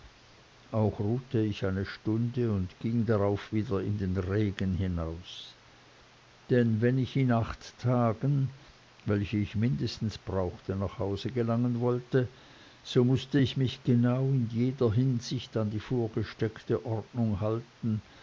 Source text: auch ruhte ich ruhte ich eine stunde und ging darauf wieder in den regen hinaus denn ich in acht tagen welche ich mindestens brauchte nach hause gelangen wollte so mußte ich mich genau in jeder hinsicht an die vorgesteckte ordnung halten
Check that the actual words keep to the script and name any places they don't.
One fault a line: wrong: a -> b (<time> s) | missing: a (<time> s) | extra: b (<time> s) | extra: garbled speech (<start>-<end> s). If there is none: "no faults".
missing: ruhte ich (1.6 s)
extra: wenn (6.8 s)